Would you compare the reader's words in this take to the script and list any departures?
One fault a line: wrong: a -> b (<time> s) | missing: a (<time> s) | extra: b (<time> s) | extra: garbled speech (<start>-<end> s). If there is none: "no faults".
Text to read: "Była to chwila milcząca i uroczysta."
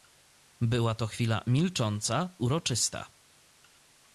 missing: i (2.4 s)